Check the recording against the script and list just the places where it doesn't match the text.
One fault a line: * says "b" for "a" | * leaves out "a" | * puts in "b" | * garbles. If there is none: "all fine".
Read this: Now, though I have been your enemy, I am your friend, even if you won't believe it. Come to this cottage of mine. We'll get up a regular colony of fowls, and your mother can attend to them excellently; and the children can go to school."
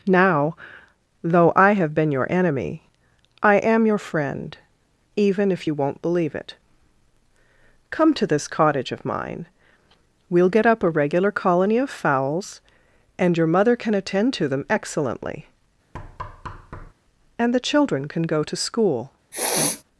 all fine